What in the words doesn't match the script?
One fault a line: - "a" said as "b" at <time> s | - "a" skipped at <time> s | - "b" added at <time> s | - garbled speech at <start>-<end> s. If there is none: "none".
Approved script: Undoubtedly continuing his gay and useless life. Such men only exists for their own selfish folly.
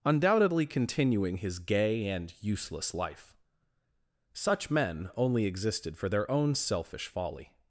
- "exists" said as "existed" at 5.5 s